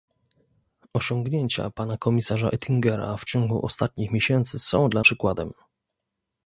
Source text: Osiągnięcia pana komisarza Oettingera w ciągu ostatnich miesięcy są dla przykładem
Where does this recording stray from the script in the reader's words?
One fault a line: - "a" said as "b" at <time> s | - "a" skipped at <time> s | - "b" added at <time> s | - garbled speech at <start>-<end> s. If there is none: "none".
none